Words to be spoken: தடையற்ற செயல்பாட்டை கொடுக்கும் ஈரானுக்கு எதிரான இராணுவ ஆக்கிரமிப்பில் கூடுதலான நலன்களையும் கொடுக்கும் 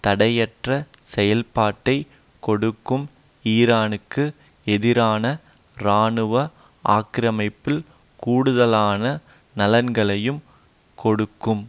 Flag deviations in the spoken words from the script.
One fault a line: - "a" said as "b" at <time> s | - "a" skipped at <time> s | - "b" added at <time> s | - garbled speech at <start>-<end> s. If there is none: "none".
none